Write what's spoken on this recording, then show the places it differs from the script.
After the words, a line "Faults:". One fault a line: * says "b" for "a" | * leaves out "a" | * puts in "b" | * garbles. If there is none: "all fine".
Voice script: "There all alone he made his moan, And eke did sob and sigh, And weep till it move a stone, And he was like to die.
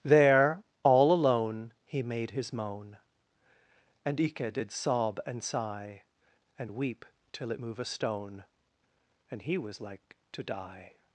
"There all alone he made his moan, And eke did sob and sigh, And weep till it move a stone, And he was like to die.
Faults:
all fine